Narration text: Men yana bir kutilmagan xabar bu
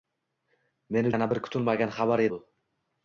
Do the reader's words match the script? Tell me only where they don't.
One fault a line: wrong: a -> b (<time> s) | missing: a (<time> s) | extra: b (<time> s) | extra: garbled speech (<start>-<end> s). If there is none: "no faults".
no faults